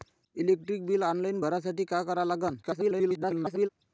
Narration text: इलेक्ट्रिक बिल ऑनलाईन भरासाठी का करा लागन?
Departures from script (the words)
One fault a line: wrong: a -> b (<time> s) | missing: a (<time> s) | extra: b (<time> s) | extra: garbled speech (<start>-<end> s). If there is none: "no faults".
extra: garbled speech (2.6-3.7 s)